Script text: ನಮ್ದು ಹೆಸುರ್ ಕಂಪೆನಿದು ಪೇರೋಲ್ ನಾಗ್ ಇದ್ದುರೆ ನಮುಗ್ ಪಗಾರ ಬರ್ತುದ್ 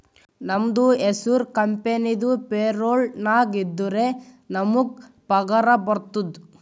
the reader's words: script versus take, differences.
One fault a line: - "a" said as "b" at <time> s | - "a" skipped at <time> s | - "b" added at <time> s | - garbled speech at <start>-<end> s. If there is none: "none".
none